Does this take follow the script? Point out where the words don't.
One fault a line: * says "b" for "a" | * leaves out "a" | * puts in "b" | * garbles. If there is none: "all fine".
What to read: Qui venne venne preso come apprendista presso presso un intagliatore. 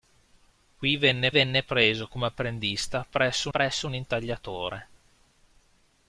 all fine